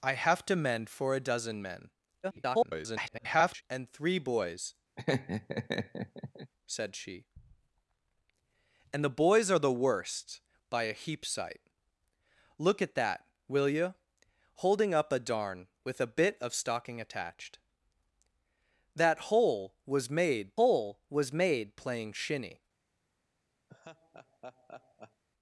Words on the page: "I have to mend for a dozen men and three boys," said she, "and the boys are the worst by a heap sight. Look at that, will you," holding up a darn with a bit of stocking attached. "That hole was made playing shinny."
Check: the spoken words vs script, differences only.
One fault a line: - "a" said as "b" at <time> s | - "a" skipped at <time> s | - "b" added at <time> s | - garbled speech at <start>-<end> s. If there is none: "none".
- garbled speech at 2.2-3.6 s
- "hole was made" added at 20.6 s